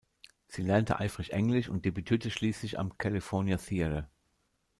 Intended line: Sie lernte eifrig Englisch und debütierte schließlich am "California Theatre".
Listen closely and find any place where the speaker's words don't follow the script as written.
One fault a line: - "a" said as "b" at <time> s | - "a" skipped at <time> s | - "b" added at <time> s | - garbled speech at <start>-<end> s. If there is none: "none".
none